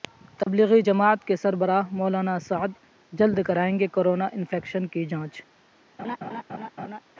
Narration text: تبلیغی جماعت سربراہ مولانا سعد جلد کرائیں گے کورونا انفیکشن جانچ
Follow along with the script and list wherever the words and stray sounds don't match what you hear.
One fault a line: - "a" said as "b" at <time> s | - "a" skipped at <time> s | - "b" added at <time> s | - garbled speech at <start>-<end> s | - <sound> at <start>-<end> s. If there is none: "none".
- dropout at 0.4-0.5 s
- "کے" added at 1.2 s
- "کی" added at 4.9 s
- laugh at 6.0-7.0 s